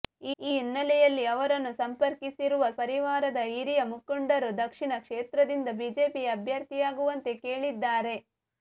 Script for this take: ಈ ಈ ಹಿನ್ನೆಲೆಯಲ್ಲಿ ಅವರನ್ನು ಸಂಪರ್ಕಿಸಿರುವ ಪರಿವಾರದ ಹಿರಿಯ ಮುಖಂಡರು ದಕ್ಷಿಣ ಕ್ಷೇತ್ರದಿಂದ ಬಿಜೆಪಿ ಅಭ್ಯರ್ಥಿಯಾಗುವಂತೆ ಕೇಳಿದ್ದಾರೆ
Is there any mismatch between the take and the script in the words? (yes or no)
no